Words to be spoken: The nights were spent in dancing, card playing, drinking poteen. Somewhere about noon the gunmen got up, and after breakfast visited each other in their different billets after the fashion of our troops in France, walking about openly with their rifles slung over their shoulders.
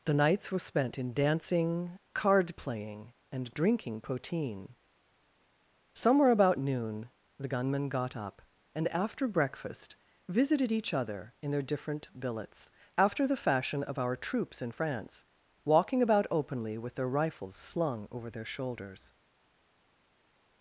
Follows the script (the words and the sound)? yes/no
no